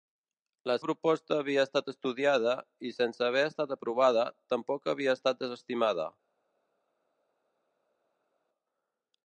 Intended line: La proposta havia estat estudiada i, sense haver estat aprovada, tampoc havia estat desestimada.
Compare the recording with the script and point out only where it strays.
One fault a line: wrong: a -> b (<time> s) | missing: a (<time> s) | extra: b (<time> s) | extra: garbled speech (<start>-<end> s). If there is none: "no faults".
no faults